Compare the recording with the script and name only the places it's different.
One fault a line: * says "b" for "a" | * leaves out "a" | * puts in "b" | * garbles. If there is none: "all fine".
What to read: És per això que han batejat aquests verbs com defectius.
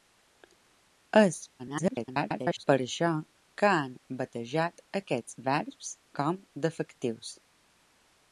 * garbles